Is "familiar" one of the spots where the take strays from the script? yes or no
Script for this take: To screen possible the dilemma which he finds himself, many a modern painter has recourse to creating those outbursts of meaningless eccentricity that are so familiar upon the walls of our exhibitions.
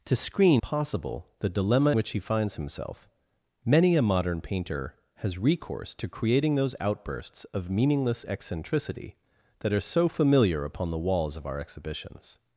no